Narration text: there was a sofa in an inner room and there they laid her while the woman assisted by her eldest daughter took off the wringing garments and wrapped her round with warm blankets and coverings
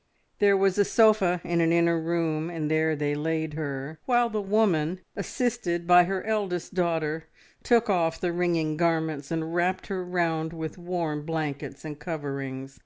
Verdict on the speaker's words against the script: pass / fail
pass